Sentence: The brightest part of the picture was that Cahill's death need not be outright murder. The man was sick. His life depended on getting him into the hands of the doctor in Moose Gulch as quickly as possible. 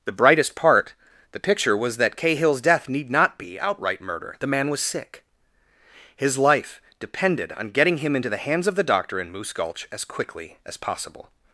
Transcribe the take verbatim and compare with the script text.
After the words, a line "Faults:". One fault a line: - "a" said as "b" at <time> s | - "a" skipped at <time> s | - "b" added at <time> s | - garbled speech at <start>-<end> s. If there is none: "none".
The brightest part the picture was that Cahill's death need not be outright murder. The man was sick. His life depended on getting him into the hands of the doctor in Moose Gulch as quickly as possible.
Faults:
- "of" skipped at 0.9 s